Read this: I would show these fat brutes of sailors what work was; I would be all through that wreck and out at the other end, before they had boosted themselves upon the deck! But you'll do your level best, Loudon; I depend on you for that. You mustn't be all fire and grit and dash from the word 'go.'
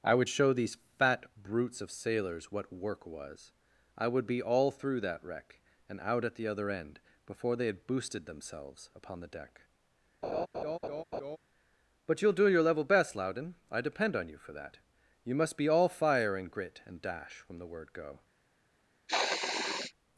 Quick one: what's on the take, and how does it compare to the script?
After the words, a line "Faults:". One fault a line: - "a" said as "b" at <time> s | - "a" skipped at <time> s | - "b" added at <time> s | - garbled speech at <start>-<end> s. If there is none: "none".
I would show these fat brutes of sailors what work was; I would be all through that wreck and out at the other end, before they had boosted themselves upon the deck! But you'll do your level best, Loudon; I depend on you for that. You must be all fire and grit and dash from the word 'go.'
Faults:
- "mustn't" said as "must" at 15.3 s